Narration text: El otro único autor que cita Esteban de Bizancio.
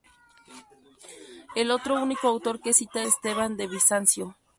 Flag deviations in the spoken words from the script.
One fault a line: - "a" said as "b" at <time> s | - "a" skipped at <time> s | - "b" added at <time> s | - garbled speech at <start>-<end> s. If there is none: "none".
none